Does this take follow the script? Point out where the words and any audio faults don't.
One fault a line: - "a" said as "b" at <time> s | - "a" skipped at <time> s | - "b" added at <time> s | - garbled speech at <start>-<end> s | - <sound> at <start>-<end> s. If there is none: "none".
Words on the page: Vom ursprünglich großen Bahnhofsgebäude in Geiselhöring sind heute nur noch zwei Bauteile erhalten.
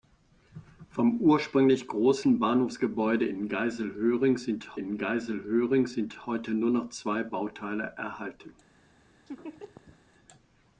- "in Geiselhöring sind" added at 4.8 s
- laugh at 9.3-10.0 s